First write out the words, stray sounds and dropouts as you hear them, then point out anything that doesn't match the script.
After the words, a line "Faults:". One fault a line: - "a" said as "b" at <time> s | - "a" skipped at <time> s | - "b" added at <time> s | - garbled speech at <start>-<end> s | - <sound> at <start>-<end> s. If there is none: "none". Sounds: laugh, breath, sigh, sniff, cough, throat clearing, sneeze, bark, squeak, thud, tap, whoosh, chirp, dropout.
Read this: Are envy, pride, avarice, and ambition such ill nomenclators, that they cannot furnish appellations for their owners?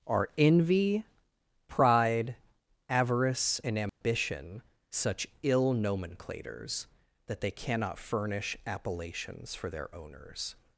Are envy, pride, avarice, and ambition such ill nomenclators, that they cannot furnish appellations for their owners?
Faults:
- dropout at 3.9-4.0 s